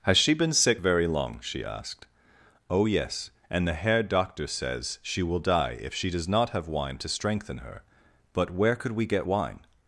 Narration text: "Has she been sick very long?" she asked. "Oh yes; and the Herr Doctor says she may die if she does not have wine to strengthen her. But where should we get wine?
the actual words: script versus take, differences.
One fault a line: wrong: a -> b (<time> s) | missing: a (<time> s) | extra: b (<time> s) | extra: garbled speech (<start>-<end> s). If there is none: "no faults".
wrong: may -> will (5.2 s)
wrong: should -> could (8.8 s)